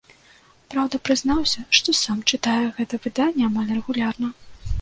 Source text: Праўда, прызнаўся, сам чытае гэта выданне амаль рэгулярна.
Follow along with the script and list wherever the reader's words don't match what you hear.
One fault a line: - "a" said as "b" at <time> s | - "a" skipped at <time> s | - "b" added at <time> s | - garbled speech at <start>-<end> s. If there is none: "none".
- "што" added at 1.8 s